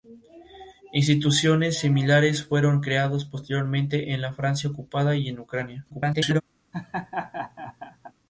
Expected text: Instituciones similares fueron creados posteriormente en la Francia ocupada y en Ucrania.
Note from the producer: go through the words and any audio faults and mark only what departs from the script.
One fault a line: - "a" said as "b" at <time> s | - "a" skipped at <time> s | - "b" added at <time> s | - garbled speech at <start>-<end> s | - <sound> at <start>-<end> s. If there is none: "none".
- garbled speech at 5.9-6.4 s
- laugh at 6.7-8.1 s